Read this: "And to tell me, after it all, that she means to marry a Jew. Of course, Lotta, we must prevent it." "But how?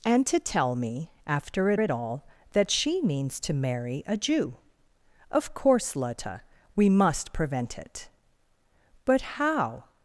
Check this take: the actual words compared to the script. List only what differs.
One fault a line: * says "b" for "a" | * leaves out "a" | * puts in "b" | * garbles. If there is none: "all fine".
* puts in "it"